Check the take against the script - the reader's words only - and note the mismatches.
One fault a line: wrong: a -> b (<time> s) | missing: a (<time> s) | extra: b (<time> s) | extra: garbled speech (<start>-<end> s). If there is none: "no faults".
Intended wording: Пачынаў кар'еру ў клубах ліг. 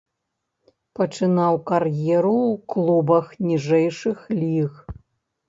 extra: ніжэйшых (3.5 s)